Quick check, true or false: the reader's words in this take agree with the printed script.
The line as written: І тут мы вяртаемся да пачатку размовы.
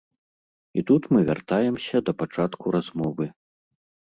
true